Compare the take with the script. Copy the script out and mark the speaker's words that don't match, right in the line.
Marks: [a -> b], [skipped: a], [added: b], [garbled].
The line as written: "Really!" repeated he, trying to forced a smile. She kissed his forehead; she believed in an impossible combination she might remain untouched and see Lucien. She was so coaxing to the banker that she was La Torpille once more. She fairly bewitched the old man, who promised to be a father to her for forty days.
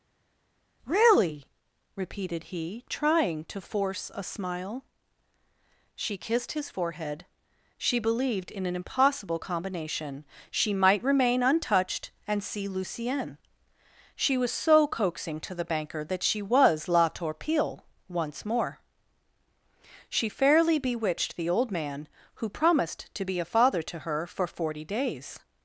"Really!" repeated he, trying to [forced -> force] a smile. She kissed his forehead; she believed in an impossible combination she might remain untouched and see Lucien. She was so coaxing to the banker that she was La Torpille once more. She fairly bewitched the old man, who promised to be a father to her for forty days.